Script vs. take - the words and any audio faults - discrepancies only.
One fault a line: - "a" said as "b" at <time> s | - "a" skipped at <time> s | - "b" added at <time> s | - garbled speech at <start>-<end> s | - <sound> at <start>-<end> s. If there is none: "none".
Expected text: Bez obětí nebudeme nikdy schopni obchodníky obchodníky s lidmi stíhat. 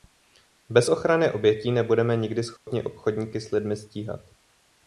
- "ochrany" added at 0.9 s
- dropout at 2.6-2.7 s
- "obchodníky" skipped at 3.4 s